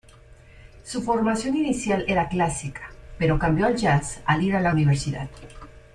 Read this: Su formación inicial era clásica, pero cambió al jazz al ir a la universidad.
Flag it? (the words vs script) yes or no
no